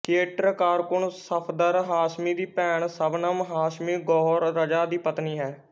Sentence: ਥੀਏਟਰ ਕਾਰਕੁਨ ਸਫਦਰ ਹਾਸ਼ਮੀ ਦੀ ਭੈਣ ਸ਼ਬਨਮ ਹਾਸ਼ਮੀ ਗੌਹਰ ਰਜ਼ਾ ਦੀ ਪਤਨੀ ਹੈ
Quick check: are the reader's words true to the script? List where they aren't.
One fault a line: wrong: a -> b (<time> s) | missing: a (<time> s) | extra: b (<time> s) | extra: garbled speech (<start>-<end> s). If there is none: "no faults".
no faults